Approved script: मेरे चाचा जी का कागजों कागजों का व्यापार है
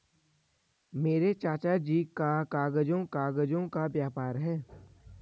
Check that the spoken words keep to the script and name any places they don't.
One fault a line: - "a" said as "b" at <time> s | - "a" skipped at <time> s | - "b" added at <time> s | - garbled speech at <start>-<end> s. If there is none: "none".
none